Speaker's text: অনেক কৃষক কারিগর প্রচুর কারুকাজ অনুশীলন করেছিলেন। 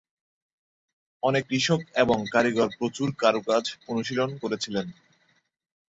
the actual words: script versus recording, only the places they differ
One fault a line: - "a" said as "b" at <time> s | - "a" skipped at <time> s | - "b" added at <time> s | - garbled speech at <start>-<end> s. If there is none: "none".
- "এবং" added at 1.9 s